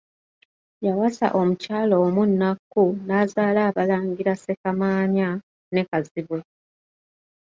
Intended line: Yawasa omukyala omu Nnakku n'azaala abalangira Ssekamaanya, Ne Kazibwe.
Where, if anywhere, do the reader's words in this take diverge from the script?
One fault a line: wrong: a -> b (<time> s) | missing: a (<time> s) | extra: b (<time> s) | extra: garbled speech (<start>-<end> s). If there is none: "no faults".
no faults